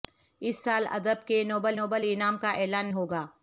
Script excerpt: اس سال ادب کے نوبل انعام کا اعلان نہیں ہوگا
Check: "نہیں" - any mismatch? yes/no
yes